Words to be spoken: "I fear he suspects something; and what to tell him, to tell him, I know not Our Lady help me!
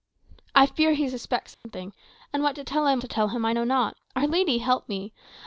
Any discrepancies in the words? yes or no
no